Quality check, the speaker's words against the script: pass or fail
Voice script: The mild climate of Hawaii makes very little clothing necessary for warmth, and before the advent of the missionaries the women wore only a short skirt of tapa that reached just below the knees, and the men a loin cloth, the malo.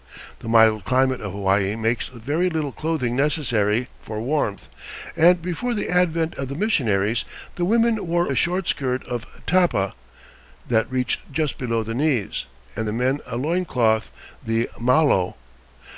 fail